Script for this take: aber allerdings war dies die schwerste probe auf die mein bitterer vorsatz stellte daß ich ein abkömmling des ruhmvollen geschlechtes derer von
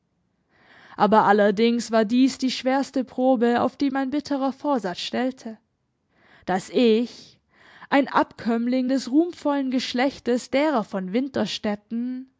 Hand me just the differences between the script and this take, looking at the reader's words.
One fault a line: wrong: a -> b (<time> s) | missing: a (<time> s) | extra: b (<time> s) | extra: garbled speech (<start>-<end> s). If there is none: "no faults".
no faults